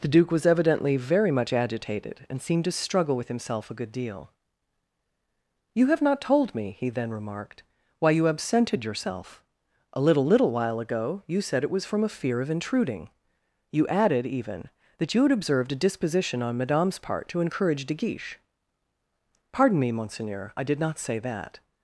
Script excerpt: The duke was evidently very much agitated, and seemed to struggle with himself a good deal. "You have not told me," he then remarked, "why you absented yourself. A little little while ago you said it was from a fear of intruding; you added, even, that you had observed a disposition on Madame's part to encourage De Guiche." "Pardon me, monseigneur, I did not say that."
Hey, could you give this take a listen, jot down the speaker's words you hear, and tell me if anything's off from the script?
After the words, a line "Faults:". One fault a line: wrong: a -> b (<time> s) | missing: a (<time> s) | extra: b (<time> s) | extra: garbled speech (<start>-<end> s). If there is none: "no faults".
The duke was evidently very much agitated, and seemed to struggle with himself a good deal. "You have not told me," he then remarked, "why you absented yourself. A little little while ago you said it was from a fear of intruding; you added, even, that you had observed a disposition on Madame's part to encourage De Guiche." "Pardon me, monseigneur, I did not say that."
Faults:
no faults